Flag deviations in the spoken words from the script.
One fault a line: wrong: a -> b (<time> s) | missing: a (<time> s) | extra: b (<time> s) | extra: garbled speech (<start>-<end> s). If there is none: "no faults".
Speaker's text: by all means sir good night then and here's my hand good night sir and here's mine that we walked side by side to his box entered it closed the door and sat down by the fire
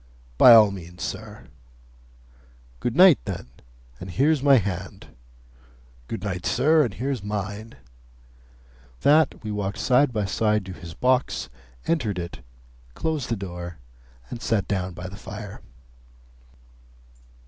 no faults